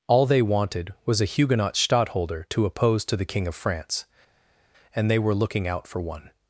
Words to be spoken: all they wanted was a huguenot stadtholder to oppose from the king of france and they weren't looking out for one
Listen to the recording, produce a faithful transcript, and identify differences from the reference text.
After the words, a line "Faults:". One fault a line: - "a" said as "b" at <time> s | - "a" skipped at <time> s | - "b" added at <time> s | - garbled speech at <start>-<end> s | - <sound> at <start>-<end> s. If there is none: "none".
all they wanted was a huguenot stadtholder to oppose to the king of france and they were looking out for one
Faults:
- "from" said as "to" at 3.0 s
- "weren't" said as "were" at 5.2 s